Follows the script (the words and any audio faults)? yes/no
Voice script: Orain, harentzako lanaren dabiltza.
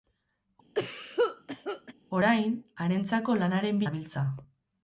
no